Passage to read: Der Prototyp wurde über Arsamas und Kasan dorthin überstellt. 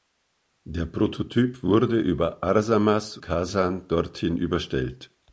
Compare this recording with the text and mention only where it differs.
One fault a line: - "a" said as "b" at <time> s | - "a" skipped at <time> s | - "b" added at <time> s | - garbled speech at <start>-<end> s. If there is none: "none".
- "und" skipped at 3.2 s